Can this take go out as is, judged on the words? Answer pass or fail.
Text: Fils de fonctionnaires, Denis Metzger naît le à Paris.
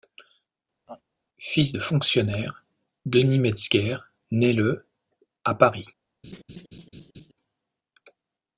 pass